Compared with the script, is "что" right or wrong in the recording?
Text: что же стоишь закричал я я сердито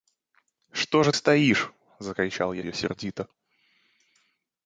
right